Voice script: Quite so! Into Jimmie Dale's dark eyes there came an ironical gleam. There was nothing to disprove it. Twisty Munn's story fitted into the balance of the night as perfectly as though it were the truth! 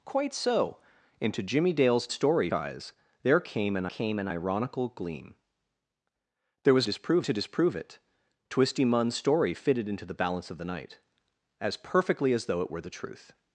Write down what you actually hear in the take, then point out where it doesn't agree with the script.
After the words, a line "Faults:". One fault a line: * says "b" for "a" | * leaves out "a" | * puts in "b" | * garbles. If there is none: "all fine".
Quite so! Into Jimmie Dale's story eyes there came an came an ironical gleam. There was disprove to disprove it. Twisty Munn's story fitted into the balance of the night as perfectly as though it were the truth!
Faults:
* says "story" for "dark"
* puts in "came an"
* says "disprove" for "nothing"